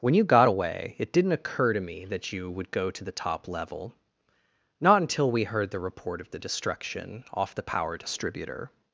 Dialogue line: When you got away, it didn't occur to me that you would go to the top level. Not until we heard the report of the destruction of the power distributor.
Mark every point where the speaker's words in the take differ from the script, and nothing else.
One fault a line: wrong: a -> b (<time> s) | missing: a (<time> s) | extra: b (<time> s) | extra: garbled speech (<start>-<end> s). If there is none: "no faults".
wrong: of -> off (7.3 s)